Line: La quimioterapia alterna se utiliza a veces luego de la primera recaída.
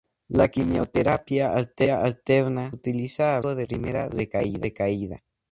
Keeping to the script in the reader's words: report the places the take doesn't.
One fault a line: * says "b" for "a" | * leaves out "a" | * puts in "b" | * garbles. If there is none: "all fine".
* leaves out "se"
* leaves out "veces"
* leaves out "la"